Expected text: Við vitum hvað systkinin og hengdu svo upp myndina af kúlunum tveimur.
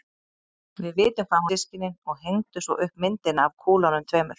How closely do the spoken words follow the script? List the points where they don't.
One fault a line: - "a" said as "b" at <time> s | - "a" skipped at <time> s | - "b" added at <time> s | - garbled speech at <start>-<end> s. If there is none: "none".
none